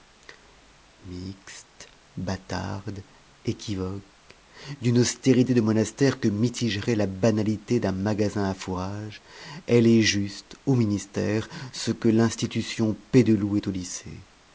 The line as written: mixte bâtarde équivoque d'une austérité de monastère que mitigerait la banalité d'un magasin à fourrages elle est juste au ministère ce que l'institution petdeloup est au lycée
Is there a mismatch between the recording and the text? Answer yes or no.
no